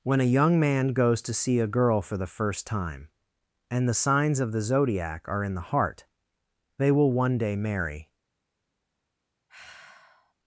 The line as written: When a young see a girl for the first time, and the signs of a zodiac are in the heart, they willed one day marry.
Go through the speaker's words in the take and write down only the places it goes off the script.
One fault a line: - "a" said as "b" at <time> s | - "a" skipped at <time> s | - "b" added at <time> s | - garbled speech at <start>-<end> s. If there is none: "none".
- "man goes to" added at 0.6 s
- "a" said as "the" at 4.5 s
- "willed" said as "will" at 6.9 s